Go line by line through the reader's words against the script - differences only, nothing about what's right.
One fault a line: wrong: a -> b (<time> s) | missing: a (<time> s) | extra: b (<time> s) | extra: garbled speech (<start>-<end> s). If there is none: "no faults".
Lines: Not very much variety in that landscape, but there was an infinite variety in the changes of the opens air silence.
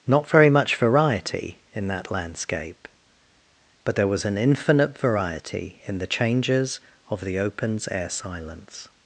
no faults